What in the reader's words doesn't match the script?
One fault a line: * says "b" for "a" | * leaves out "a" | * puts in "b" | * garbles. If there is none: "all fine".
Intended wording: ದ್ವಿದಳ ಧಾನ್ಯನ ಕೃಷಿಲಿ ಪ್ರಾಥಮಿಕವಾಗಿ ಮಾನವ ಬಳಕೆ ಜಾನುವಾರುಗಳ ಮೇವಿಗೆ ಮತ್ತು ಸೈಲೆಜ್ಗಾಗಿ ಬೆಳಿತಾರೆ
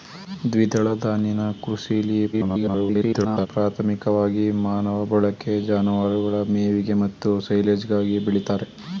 * garbles